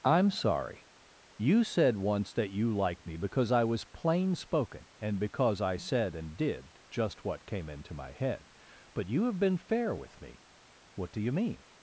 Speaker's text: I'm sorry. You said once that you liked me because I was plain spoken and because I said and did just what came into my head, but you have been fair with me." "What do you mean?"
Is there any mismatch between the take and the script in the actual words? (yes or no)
no